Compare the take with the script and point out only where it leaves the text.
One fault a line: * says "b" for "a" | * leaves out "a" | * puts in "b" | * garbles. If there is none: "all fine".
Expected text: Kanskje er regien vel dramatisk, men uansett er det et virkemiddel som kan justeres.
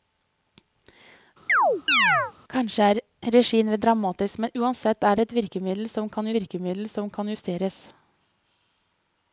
* puts in "virkemiddel som kan"